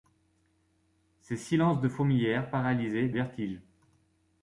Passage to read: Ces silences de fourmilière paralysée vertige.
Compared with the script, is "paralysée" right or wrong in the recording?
right